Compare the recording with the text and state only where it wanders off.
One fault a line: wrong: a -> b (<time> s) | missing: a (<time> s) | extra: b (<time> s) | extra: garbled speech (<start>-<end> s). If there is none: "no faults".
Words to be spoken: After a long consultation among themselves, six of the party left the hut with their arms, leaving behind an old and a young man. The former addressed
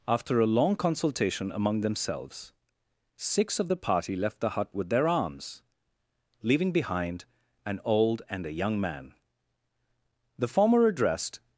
no faults